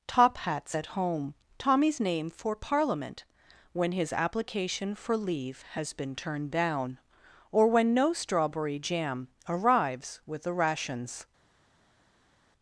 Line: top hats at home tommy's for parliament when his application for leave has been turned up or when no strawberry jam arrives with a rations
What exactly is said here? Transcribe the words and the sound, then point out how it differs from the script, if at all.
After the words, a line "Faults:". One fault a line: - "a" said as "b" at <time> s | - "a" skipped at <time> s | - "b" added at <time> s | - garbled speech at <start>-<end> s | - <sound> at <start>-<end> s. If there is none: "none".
top hats at home tommy's name for parliament when his application for leave has been turned down or when no strawberry jam arrives with the rations
Faults:
- "name" added at 2.0 s
- "up" said as "down" at 6.5 s
- "a" said as "the" at 10.4 s